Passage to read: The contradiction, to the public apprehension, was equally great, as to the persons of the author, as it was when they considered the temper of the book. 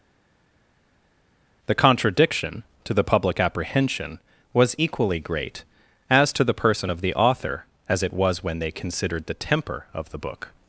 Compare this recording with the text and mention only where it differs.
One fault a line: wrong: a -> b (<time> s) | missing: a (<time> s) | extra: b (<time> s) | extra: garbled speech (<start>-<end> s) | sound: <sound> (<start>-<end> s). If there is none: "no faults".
wrong: persons -> person (6.5 s)